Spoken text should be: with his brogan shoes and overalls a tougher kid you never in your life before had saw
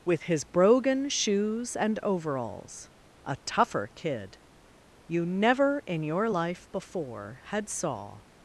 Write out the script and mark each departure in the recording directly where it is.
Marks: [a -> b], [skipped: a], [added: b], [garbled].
with his brogan shoes and overalls a tougher kid you never in your life before had saw